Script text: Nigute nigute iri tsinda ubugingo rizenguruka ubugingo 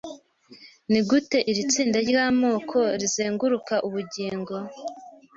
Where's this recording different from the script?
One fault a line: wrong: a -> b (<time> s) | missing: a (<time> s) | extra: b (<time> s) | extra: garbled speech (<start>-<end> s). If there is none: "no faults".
missing: nigute (1.4 s)
wrong: ubugingo -> ryamoko (2.1 s)